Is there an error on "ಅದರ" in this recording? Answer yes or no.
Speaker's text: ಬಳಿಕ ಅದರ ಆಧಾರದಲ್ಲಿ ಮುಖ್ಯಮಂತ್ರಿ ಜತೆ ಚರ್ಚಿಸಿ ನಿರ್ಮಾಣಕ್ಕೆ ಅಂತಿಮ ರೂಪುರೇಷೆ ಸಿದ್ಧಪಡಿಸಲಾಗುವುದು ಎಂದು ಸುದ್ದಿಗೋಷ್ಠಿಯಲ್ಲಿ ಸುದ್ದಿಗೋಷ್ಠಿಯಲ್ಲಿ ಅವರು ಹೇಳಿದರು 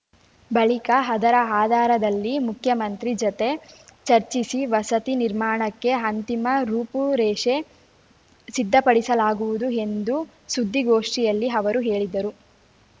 no